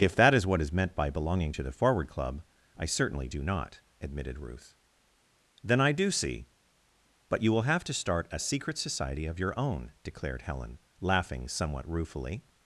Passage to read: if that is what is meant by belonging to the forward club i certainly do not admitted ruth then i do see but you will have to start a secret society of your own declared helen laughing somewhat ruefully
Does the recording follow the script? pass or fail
pass